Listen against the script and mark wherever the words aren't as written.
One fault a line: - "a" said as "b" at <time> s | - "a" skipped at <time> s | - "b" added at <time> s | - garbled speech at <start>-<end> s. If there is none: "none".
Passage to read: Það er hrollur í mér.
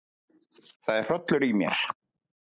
none